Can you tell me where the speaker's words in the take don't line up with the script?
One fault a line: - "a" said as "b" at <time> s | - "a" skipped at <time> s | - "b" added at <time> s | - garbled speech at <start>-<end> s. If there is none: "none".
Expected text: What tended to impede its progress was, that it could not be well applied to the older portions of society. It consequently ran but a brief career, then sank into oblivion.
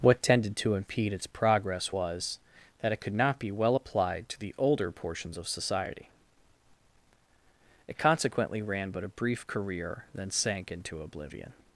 none